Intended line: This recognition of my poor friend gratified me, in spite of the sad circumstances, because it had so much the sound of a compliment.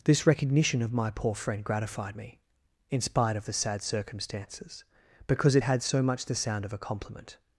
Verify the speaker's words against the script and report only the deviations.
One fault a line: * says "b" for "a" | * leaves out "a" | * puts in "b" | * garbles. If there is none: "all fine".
all fine